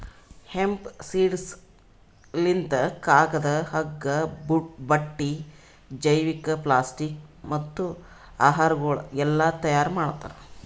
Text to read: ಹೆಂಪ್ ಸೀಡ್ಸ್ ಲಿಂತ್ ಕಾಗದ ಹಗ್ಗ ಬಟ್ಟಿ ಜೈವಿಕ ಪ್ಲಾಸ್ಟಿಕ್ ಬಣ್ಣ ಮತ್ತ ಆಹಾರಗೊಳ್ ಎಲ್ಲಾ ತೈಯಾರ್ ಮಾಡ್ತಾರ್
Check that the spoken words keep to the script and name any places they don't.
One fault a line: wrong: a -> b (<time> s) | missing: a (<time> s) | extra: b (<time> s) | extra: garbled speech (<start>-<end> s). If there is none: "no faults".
missing: ಬಣ್ಣ (7.2 s)